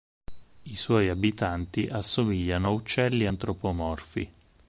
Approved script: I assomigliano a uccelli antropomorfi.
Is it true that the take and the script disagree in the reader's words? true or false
true